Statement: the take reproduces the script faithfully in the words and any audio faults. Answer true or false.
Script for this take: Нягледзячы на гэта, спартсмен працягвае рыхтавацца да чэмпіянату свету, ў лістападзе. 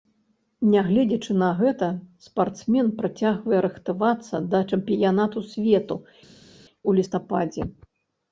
true